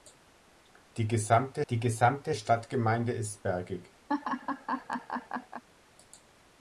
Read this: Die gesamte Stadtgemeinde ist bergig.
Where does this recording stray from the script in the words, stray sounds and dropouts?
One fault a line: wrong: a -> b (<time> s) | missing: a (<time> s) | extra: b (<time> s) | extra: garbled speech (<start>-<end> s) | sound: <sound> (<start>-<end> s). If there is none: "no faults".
extra: die gesamte (1.7 s)
sound: laugh (4.1-5.6 s)